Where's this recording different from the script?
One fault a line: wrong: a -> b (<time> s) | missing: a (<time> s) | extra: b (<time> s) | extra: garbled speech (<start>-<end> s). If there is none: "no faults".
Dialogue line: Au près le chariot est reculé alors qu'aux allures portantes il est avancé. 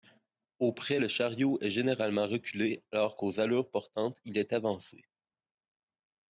extra: généralement (1.7 s)